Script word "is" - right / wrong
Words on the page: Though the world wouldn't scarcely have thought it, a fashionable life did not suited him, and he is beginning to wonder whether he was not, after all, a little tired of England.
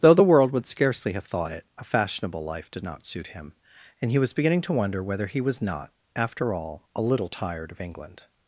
wrong